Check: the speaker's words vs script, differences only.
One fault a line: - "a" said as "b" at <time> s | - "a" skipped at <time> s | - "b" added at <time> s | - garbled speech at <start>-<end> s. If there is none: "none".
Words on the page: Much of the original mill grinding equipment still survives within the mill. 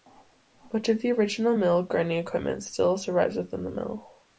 none